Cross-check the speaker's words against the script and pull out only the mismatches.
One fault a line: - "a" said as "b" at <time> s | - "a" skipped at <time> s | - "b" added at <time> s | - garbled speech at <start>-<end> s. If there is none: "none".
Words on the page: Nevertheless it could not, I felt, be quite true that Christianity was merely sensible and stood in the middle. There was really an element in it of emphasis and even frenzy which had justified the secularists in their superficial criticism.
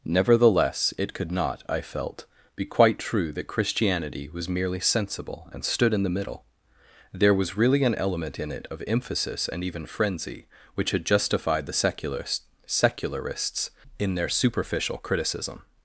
- "secularists" added at 12.7 s